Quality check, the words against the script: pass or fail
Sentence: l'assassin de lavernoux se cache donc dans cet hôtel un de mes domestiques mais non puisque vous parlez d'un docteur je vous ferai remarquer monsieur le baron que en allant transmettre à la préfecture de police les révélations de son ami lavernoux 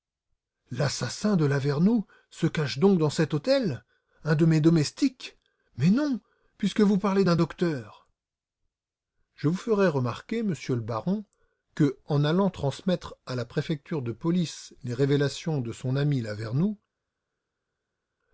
pass